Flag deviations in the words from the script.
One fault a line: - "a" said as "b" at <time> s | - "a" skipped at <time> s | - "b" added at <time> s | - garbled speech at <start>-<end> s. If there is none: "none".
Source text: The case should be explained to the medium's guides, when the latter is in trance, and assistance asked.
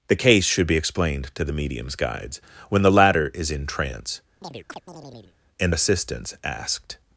none